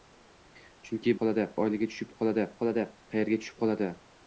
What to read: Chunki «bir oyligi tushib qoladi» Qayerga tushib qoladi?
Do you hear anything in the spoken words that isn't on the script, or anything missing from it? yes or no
yes